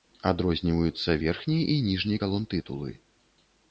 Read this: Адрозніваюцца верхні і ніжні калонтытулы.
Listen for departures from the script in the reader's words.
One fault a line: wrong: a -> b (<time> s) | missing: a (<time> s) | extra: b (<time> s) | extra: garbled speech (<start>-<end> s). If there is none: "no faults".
no faults